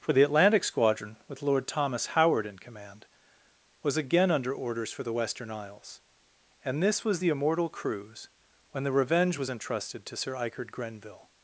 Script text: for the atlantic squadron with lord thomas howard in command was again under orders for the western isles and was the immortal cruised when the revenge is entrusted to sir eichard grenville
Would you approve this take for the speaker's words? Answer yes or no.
no